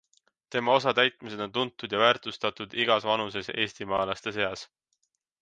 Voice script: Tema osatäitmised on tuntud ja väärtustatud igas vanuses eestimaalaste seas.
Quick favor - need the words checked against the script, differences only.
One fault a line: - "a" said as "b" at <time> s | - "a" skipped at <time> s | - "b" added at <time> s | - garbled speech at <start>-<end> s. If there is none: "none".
none